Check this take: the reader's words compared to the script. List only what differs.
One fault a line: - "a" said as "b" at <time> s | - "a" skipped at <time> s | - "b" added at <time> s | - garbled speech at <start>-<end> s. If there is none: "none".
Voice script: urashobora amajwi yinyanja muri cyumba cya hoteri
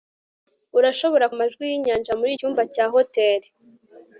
none